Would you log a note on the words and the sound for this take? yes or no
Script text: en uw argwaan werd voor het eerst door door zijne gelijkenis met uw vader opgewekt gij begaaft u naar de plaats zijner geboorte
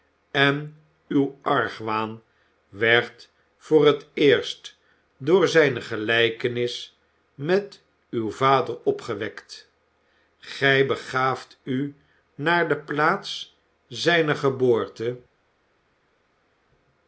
yes